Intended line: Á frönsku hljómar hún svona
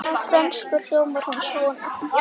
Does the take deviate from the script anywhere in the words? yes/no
no